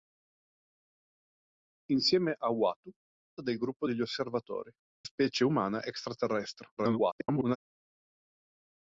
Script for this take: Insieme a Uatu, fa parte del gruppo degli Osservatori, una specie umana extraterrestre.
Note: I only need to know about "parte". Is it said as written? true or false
false